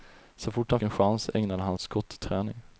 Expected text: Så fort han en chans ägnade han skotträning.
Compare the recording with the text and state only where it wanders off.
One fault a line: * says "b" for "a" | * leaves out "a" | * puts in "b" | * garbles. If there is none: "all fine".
all fine